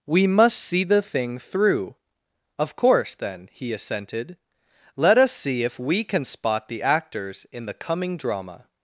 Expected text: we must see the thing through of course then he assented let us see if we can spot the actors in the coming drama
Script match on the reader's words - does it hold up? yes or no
yes